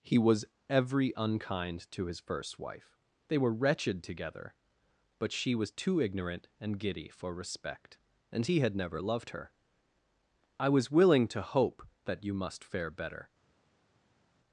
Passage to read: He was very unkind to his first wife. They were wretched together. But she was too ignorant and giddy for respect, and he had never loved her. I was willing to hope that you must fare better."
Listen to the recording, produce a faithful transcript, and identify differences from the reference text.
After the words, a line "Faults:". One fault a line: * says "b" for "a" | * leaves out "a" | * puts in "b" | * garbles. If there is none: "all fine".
He was every unkind to his first wife. They were wretched together. But she was too ignorant and giddy for respect, and he had never loved her. I was willing to hope that you must fare better."
Faults:
* says "every" for "very"